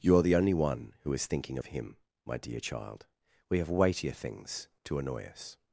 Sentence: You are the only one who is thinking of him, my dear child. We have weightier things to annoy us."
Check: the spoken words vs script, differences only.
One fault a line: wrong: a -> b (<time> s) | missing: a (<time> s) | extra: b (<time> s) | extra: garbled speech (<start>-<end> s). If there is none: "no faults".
no faults